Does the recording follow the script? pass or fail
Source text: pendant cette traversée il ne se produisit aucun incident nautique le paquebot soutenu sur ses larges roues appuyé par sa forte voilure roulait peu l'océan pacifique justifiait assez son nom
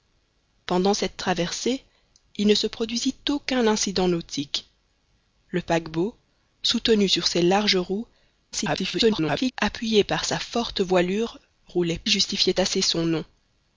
fail